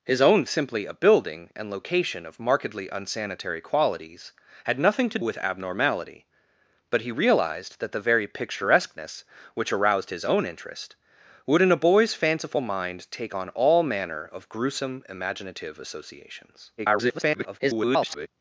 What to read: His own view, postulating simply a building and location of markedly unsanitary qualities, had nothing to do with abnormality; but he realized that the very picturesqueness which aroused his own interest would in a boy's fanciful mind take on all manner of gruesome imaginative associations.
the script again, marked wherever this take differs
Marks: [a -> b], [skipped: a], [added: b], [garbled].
His own [skipped: view, postulating] simply a building and location of markedly unsanitary qualities, had nothing to [skipped: do] with abnormality; but he realized that the very picturesqueness which aroused his own interest would in a boy's fanciful mind take on all manner of gruesome imaginative associations. [garbled]